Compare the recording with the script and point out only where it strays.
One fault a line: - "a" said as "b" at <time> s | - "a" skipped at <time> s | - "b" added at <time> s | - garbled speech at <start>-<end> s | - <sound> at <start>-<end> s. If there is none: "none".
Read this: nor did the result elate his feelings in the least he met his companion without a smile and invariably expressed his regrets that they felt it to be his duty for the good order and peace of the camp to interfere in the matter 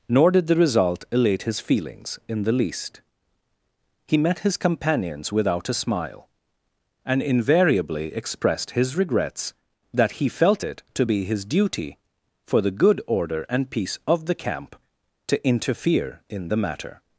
- "companion" said as "companions" at 4.6 s
- "they" said as "he" at 10.1 s